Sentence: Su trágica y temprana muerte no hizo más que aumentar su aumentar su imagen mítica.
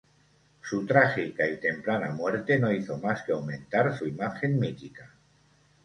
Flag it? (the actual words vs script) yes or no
yes